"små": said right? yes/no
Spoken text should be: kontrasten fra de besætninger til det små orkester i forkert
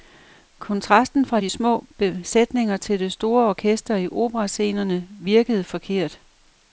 no